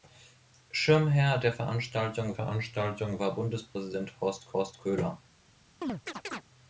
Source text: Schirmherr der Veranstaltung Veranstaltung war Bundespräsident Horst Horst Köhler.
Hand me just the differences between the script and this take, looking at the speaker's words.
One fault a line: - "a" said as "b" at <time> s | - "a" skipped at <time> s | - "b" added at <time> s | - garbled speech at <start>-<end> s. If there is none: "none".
none